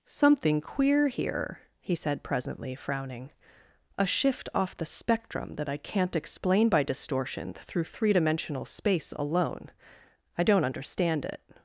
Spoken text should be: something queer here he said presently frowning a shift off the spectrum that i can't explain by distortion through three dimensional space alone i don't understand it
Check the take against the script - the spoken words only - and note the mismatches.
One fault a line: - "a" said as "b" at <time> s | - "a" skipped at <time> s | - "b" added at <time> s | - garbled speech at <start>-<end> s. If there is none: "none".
none